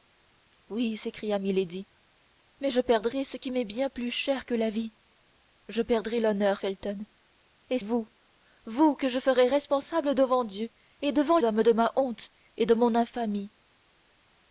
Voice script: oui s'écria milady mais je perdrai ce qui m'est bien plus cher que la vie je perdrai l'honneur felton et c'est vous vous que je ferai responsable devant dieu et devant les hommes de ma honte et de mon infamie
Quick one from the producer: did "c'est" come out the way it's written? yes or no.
no